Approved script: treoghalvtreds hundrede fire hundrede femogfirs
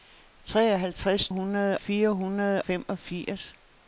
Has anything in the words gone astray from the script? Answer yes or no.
no